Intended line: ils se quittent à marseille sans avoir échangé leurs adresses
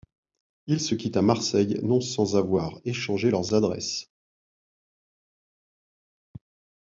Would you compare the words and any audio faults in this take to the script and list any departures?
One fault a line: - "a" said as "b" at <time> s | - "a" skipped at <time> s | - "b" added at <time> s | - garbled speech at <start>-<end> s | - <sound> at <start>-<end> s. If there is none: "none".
- "non" added at 1.8 s